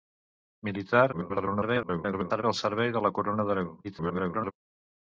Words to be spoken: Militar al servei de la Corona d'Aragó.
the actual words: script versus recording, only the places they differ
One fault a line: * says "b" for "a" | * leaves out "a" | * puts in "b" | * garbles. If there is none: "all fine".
* garbles
* garbles